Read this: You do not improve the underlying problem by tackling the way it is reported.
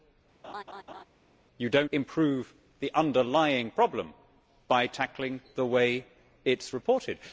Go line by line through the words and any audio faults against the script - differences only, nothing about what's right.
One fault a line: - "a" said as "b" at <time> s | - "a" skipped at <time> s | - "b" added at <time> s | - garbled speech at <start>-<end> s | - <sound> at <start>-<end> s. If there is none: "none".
- laugh at 0.4-1.0 s
- "not" skipped at 1.8 s